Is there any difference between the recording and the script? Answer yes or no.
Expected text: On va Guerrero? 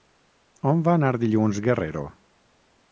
yes